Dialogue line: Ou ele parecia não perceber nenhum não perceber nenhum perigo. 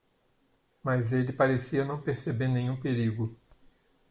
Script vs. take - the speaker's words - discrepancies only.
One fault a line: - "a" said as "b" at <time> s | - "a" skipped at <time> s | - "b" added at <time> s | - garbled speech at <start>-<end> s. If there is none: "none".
- "Ou" said as "Mas" at 0.8 s
- "não perceber nenhum" skipped at 2.8 s